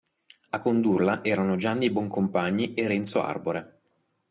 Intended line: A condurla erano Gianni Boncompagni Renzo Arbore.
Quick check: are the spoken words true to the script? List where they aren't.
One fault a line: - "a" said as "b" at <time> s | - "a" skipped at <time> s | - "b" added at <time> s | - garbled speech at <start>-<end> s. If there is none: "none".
- "e" added at 2.7 s